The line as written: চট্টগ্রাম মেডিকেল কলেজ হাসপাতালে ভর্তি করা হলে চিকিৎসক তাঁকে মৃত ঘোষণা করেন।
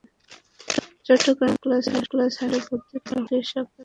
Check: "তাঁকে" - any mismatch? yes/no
yes